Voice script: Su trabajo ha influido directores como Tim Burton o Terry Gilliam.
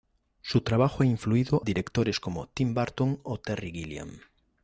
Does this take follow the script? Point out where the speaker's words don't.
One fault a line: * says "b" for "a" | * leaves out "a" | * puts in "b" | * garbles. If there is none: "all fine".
all fine